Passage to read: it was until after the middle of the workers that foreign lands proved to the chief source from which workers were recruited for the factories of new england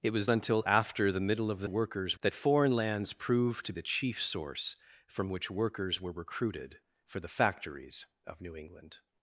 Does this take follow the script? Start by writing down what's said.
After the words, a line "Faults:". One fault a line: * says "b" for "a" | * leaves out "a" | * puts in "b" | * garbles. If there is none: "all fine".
it was until after the middle of the workers that foreign lands proved to the chief source from which workers were recruited for the factories of new england
Faults:
all fine